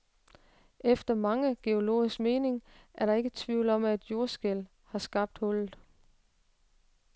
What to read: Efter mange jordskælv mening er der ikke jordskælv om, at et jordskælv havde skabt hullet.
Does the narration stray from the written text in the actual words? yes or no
yes